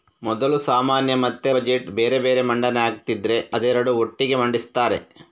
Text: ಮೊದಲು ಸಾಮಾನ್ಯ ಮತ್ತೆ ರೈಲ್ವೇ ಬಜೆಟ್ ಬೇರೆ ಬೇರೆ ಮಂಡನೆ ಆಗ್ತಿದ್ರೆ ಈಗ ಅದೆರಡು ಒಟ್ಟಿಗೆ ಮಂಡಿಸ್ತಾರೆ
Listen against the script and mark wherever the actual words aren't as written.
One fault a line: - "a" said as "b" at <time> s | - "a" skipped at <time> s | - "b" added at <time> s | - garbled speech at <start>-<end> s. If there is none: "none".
- "ರೈಲ್ವೇ" skipped at 1.5 s
- "ಈಗ" skipped at 3.4 s